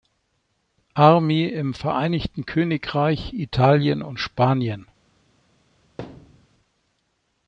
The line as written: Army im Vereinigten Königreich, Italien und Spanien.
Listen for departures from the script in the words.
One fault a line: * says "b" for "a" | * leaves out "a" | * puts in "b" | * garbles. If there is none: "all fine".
all fine